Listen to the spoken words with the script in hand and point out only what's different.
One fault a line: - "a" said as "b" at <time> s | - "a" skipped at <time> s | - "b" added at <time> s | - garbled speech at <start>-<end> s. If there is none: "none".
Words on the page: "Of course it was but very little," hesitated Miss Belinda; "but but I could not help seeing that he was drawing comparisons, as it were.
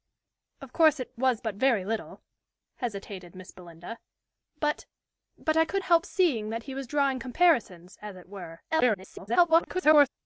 - "not" skipped at 5.8 s
- garbled speech at 8.7-10.1 s